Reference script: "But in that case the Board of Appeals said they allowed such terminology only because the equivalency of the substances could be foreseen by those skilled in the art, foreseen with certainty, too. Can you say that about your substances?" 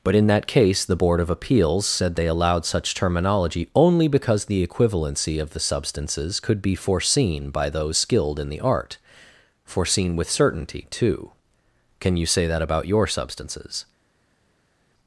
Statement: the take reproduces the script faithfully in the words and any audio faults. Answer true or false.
true